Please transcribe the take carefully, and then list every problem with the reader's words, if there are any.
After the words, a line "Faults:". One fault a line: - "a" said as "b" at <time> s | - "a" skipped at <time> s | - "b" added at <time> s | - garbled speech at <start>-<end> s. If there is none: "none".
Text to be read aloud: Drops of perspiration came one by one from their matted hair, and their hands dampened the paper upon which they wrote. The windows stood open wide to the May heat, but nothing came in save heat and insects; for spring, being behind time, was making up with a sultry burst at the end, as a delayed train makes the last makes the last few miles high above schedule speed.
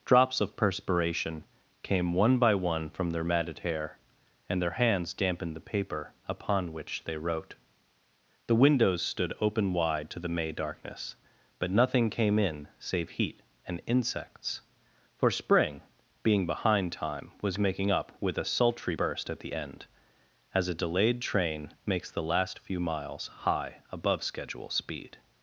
Drops of perspiration came one by one from their matted hair, and their hands dampened the paper upon which they wrote. The windows stood open wide to the May darkness, but nothing came in save heat and insects; for spring, being behind time, was making up with a sultry burst at the end, as a delayed train makes the last few miles high above schedule speed.
Faults:
- "heat" said as "darkness" at 10.5 s
- "makes the last" skipped at 22.6 s